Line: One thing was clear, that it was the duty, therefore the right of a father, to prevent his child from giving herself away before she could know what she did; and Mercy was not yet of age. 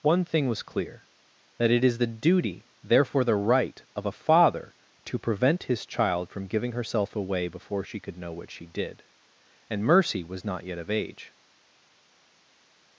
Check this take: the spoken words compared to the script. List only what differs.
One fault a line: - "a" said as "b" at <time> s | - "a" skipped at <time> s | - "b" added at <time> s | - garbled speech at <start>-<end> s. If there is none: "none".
- "was" said as "is" at 1.8 s